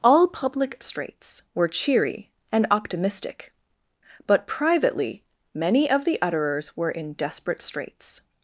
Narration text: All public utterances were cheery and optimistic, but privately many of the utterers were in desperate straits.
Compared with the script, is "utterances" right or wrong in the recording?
wrong